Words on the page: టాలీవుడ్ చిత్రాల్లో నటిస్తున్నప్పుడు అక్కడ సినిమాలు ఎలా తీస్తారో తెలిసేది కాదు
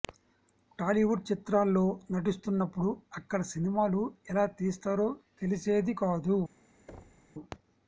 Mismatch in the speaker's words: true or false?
false